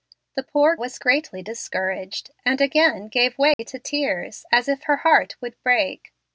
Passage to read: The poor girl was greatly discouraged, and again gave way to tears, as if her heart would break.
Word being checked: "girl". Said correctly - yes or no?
no